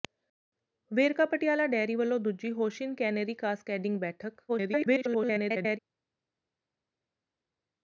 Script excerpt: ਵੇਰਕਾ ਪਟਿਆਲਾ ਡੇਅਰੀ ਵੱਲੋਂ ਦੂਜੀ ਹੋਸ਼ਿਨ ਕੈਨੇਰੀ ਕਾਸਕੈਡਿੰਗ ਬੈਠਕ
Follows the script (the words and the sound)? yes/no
no